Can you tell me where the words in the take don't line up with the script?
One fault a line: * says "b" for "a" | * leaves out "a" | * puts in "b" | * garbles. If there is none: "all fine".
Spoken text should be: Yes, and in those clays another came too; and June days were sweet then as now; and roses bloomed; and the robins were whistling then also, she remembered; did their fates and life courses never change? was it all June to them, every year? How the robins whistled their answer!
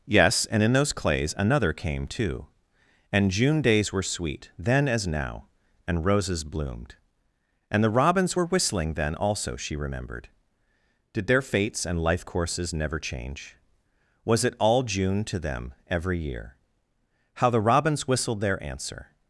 all fine